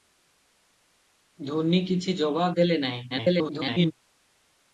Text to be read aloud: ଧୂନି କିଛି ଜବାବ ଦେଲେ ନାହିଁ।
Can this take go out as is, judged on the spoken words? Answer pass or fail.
fail